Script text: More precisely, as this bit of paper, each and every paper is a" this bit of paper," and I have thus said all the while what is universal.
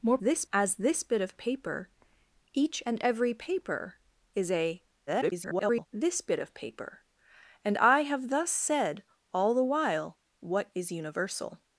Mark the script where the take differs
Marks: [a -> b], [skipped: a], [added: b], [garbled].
More [precisely, -> this] as this bit of paper, each and every paper is a" [garbled] this bit of paper," and I have thus said all the while what is universal.